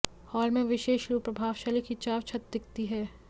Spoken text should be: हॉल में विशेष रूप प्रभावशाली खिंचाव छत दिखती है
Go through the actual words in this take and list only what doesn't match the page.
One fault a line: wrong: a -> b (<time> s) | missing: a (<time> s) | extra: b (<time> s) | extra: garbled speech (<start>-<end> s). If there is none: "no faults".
no faults